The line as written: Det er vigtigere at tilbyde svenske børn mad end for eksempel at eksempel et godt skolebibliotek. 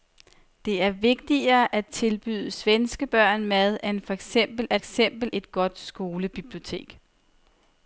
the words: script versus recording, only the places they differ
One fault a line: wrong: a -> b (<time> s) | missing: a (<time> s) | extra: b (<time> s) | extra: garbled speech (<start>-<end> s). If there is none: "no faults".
no faults